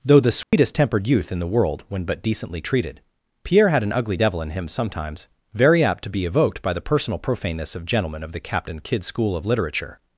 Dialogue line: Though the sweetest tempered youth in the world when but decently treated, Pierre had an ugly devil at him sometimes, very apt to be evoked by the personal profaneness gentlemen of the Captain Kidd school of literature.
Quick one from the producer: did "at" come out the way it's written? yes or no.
no